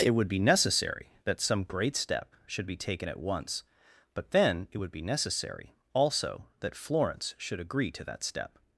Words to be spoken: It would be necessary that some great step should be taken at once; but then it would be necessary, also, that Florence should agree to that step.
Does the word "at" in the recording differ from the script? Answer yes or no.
no